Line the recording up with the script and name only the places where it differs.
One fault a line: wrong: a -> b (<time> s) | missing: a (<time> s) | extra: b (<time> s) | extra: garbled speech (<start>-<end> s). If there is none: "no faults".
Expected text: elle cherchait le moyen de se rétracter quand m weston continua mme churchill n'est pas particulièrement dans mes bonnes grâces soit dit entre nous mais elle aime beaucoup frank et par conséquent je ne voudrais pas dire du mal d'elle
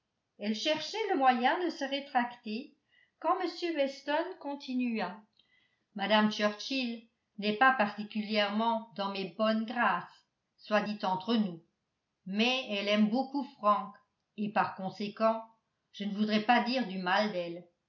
no faults